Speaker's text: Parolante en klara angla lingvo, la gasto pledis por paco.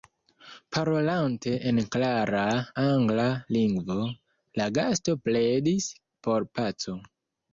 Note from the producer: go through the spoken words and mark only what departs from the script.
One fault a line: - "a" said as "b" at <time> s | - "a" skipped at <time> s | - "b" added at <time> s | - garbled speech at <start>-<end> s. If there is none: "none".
none